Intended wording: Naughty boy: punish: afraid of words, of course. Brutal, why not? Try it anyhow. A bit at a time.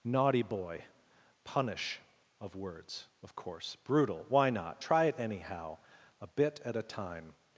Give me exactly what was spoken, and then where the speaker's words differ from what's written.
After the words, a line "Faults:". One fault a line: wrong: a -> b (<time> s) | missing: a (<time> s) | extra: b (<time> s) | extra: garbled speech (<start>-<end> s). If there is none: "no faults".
Naughty boy: punish: of words, of course. Brutal, why not? Try it anyhow. A bit at a time.
Faults:
missing: afraid (2.0 s)